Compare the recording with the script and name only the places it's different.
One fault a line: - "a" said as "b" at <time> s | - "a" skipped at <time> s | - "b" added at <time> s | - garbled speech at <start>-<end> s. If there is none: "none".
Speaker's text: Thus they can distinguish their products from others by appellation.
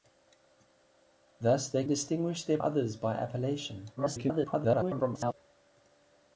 - "can" skipped at 1.8 s
- "products from" skipped at 2.6 s
- garbled speech at 4.0-5.3 s